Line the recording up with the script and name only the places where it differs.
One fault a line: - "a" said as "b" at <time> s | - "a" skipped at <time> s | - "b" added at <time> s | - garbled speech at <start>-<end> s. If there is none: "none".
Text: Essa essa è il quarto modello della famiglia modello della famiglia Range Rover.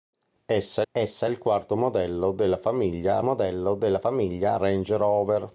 none